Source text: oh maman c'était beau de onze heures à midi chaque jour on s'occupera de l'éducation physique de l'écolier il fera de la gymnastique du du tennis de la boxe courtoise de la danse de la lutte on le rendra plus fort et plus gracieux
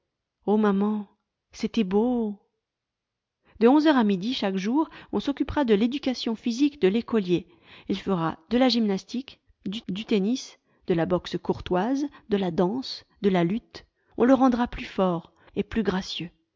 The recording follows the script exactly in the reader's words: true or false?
true